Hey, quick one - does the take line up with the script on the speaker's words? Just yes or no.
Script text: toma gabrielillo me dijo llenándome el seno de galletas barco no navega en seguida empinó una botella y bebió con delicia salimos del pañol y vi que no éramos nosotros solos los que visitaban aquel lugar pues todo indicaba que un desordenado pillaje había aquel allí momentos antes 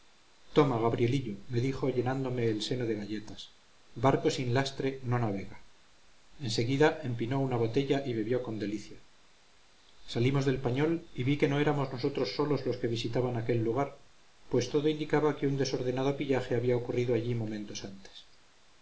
no